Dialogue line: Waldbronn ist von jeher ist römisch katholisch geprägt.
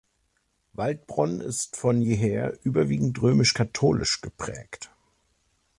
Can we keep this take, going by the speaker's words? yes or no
no